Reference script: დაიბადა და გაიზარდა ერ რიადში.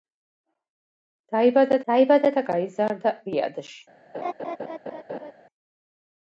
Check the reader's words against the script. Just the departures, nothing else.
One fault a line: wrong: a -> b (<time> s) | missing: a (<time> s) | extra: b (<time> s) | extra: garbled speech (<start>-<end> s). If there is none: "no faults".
extra: დაიბადა (1.9 s)
missing: ერ (3.1 s)